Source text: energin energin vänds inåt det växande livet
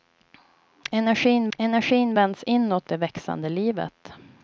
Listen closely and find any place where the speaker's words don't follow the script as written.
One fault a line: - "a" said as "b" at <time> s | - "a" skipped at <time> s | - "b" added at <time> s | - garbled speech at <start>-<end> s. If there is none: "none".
none